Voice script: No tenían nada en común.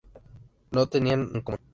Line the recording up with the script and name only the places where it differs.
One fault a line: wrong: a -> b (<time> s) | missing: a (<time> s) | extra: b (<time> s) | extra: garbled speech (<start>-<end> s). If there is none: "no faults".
missing: nada (1.3 s)